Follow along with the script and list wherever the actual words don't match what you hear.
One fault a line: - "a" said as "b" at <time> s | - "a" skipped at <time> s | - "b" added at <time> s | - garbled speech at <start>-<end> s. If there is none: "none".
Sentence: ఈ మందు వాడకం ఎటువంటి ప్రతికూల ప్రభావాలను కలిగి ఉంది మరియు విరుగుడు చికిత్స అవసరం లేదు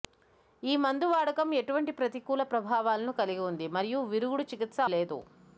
- "అవసరం" skipped at 4.8 s